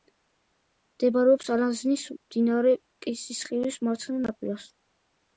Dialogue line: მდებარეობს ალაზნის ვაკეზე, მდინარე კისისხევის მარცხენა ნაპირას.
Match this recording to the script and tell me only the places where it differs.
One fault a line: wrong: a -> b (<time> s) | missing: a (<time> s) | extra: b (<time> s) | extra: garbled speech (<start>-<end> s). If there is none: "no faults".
missing: ვაკეზე (2.0 s)